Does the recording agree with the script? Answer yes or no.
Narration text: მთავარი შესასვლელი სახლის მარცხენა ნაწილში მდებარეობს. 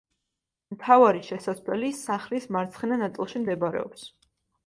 yes